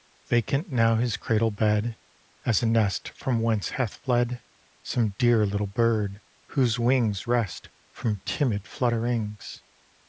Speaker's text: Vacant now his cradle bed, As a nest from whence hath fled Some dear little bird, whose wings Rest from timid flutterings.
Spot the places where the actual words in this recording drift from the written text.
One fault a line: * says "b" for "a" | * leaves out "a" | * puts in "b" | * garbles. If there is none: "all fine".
all fine